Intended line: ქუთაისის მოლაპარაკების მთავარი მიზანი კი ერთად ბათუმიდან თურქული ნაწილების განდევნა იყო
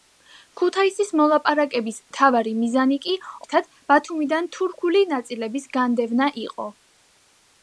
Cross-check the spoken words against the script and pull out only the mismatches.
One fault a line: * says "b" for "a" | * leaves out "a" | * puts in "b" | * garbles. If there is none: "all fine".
all fine